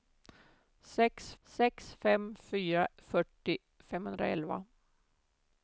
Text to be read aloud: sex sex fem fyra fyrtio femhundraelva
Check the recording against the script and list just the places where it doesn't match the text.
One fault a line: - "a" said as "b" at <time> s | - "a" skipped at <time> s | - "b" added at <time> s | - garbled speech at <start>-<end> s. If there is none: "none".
none